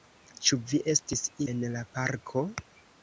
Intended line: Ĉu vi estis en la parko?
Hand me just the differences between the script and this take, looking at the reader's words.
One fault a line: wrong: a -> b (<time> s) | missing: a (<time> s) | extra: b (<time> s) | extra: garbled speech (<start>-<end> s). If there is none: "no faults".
no faults